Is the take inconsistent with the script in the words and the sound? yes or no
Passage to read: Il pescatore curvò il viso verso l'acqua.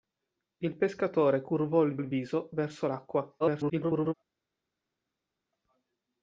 yes